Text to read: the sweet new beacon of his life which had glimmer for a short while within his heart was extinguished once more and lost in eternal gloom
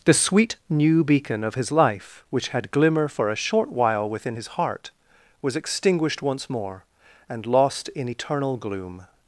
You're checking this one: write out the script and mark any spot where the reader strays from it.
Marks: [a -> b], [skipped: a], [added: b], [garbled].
the sweet new beacon of his life which had glimmer for a short while within his heart was extinguished once more and lost in eternal gloom